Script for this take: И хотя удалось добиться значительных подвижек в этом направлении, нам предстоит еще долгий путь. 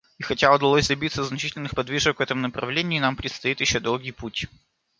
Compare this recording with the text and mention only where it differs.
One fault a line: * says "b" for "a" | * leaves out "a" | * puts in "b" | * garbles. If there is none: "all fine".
all fine